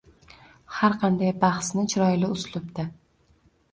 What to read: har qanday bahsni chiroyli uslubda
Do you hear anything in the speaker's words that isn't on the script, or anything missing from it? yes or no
no